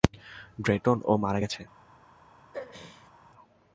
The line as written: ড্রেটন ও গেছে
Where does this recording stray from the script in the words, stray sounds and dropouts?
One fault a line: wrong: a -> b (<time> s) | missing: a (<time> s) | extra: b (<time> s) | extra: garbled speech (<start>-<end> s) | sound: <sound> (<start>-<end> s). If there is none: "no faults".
extra: মারা (1.2 s)
sound: throat clearing (2.5-3.1 s)